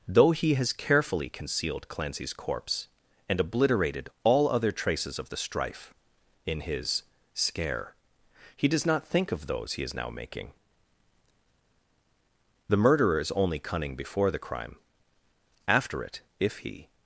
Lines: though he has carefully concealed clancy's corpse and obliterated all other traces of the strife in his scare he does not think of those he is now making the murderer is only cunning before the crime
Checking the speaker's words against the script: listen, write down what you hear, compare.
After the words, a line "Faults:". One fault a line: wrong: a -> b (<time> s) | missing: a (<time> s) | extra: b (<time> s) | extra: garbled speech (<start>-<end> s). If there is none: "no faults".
though he has carefully concealed clancy's corpse and obliterated all other traces of the strife in his scare he does not think of those he is now making the murderer is only cunning before the crime after it if he
Faults:
extra: after it if he (15.7 s)